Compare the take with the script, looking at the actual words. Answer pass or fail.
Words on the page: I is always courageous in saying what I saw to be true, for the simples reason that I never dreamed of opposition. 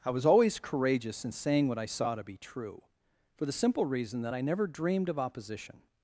fail